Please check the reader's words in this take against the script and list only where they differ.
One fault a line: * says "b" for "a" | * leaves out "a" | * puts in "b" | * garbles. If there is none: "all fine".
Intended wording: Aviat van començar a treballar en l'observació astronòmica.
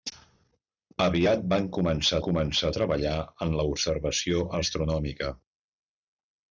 * puts in "començar"